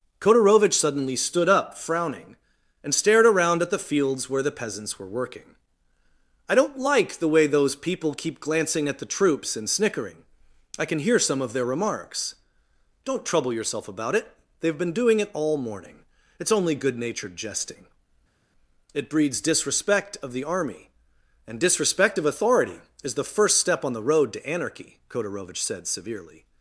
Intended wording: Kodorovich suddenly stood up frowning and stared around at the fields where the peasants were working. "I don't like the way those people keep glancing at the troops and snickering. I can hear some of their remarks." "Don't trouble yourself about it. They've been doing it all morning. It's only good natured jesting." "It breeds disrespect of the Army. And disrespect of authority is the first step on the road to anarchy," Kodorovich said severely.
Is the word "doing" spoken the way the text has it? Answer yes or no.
yes